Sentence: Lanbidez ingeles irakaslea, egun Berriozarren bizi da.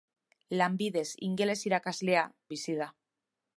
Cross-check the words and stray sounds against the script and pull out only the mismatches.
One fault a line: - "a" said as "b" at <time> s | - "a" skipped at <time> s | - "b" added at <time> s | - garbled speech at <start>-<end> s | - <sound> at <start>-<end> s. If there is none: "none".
- "egun Berriozarren" skipped at 2.2 s